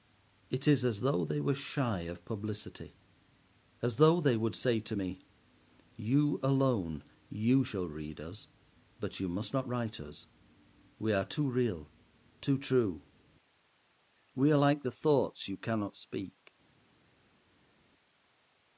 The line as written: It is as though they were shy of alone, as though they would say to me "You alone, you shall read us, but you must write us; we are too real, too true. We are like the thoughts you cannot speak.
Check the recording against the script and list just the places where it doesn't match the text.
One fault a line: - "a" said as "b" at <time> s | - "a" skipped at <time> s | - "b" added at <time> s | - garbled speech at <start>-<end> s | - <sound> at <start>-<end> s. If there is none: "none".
- "alone" said as "publicity" at 2.2 s
- "not" added at 9.5 s